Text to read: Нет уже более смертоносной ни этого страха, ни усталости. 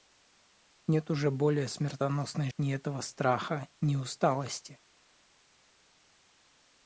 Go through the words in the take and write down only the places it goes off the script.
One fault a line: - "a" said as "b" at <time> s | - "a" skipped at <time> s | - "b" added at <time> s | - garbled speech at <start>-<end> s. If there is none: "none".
none